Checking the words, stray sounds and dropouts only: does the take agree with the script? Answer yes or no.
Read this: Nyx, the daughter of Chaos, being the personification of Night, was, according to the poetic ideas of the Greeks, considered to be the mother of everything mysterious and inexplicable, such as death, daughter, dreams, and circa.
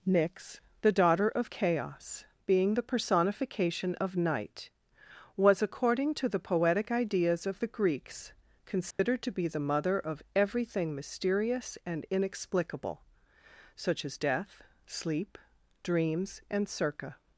no